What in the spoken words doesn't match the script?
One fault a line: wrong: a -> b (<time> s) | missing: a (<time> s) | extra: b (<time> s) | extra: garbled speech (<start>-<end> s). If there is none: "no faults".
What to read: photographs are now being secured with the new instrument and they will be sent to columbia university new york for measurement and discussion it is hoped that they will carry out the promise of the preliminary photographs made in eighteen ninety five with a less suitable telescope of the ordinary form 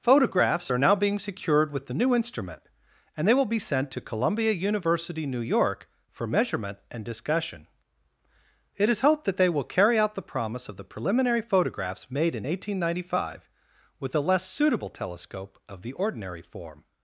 no faults